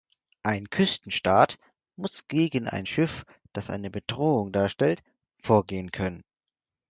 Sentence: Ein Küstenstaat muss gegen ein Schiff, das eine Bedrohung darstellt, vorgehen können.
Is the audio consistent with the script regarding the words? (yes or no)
yes